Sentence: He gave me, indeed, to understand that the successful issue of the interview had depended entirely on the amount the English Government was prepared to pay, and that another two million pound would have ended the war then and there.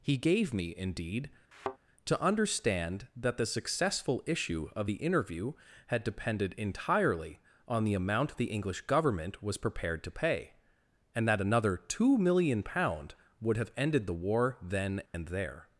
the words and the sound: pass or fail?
fail